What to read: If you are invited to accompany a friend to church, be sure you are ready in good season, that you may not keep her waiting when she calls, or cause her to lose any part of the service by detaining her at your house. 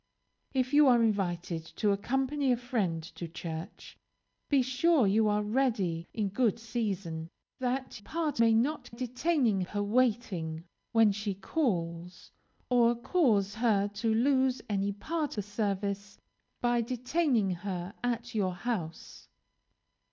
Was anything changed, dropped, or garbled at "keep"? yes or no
yes